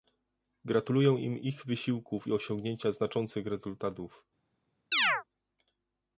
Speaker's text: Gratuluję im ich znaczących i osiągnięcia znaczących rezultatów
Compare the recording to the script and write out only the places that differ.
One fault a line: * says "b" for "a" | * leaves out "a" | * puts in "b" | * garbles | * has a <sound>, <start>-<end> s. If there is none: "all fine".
* says "wysiłków" for "znaczących"
* has a chirp, 4.9-5.2 s